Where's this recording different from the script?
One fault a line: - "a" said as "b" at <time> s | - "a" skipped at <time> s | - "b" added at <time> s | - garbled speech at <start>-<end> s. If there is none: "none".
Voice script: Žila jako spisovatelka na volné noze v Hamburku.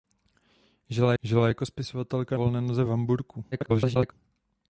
- "žila" added at 1.2 s
- "na" skipped at 2.4 s
- garbled speech at 3.5-4.1 s